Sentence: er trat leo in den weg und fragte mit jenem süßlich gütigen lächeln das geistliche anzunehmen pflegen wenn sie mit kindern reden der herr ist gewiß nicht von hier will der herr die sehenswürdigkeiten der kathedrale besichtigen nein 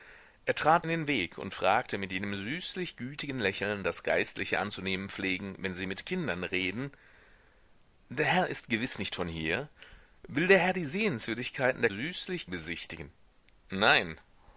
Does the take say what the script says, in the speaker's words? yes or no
no